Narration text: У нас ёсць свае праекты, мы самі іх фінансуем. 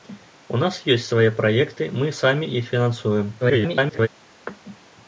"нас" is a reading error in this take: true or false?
false